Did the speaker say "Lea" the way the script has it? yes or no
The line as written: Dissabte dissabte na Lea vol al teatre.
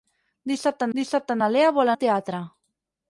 yes